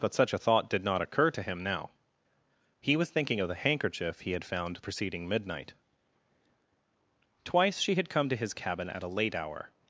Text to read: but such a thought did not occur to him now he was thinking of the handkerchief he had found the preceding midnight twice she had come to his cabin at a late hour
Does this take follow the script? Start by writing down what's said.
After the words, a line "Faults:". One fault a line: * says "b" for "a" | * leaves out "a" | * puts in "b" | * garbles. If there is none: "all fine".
but such a thought did not occur to him now he was thinking of the handkerchief he had found preceding midnight twice she had come to his cabin at a late hour
Faults:
* leaves out "the"